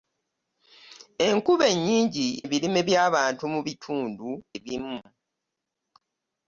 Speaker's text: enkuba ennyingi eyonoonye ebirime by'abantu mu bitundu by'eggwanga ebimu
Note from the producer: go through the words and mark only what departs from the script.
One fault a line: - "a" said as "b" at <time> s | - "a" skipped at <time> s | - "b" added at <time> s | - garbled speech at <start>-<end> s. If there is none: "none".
- "eyonoonye" skipped at 2.3 s
- "by'eggwanga" skipped at 4.3 s